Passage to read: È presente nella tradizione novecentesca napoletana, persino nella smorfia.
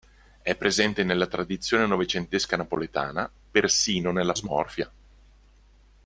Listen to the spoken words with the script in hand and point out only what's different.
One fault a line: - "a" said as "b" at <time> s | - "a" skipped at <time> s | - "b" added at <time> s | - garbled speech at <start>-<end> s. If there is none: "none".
none